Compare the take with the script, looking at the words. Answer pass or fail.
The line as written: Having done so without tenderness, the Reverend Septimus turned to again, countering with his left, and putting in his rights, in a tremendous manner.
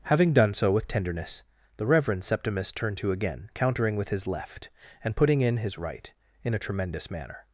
fail